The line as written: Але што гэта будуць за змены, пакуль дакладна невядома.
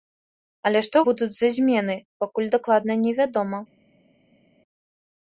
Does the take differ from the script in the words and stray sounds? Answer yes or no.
yes